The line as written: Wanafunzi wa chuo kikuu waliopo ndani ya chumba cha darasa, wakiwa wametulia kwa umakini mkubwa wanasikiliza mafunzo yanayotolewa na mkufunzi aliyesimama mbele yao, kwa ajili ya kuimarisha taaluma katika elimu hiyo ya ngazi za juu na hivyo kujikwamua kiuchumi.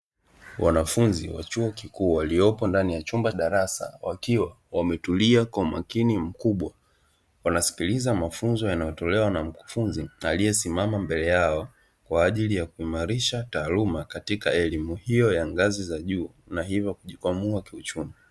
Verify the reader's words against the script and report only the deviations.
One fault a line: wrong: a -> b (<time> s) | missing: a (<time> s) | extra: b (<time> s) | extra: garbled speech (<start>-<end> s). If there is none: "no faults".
missing: cha (3.3 s)